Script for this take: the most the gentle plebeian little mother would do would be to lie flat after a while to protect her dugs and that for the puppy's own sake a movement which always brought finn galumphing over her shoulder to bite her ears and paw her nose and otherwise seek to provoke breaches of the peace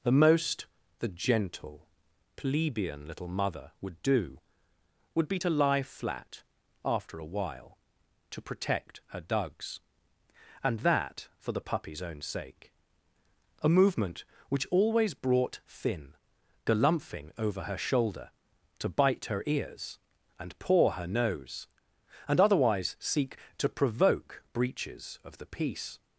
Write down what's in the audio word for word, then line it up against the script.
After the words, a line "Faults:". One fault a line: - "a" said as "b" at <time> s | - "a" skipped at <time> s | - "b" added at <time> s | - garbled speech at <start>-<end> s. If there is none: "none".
the most the gentle plebeian little mother would do would be to lie flat after a while to protect her dugs and that for the puppy's own sake a movement which always brought finn galumphing over her shoulder to bite her ears and paw her nose and otherwise seek to provoke breaches of the peace
Faults:
none